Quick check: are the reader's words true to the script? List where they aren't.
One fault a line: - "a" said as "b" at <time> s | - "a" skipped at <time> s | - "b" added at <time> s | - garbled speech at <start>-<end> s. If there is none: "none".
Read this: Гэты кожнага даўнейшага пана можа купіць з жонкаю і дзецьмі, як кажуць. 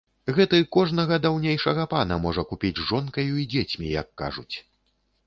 none